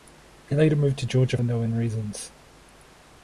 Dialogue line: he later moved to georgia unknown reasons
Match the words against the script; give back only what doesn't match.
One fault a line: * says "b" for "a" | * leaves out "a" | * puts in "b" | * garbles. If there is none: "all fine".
all fine